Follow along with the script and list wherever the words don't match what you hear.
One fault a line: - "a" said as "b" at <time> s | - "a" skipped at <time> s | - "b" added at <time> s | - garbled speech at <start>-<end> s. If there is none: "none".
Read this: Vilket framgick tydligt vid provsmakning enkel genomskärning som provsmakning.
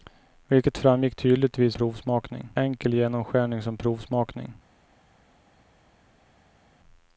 none